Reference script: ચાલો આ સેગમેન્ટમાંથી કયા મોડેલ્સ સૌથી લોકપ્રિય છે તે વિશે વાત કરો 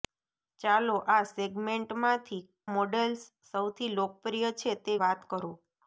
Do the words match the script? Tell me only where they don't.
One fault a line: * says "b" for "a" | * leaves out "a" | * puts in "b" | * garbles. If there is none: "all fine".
* leaves out "કયા"
* leaves out "વિશે"